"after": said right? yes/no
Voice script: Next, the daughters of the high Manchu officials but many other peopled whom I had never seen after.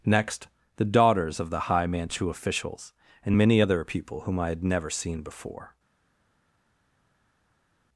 no